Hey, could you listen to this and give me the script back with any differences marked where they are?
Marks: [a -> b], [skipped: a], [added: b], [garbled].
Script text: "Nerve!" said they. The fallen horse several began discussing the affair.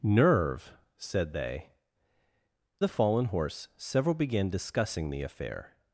"Nerve!" said they. The fallen horse several began discussing the affair.